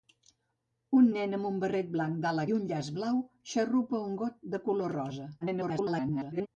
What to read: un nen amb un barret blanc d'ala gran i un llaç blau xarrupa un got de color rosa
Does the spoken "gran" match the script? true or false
false